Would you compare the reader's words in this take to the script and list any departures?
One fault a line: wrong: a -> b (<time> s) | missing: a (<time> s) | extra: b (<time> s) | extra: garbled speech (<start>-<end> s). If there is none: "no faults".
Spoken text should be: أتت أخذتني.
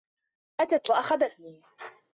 no faults